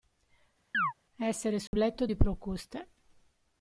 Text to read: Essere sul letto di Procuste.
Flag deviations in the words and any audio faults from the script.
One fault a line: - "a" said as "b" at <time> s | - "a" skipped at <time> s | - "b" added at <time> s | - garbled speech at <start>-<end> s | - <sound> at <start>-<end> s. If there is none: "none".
- chirp at 0.7-0.9 s
- dropout at 1.7-1.7 s